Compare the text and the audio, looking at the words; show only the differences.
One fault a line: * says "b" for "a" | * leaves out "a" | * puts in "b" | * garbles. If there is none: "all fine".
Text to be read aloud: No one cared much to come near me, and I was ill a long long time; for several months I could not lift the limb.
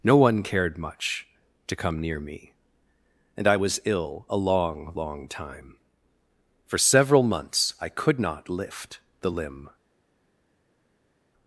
all fine